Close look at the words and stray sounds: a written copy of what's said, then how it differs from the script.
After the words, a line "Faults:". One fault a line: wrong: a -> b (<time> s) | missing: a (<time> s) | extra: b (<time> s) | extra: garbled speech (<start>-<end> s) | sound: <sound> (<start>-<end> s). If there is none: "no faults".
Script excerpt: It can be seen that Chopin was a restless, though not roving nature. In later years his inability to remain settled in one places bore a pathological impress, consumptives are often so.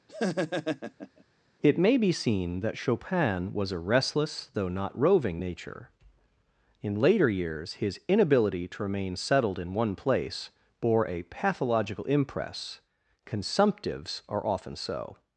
It may be seen that Chopin was a restless, though not roving nature. In later years his inability to remain settled in one place bore a pathological impress, consumptives are often so.
Faults:
sound: laugh (0.1-1.2 s)
wrong: can -> may (1.8 s)
wrong: places -> place (10.0 s)